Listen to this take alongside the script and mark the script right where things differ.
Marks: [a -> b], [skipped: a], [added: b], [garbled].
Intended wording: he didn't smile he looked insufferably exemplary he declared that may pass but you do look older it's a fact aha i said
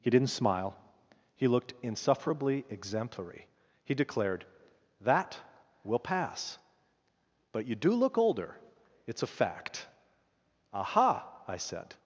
he didn't smile he looked insufferably exemplary he declared that [may -> will] pass but you do look older it's a fact aha i said